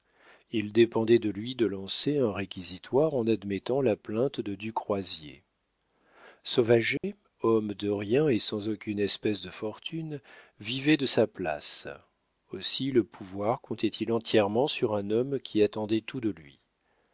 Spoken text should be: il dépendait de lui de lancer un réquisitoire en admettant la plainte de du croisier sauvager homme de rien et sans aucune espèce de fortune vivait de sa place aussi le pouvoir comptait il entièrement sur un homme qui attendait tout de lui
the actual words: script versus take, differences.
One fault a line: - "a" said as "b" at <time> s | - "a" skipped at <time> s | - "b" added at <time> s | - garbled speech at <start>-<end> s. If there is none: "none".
none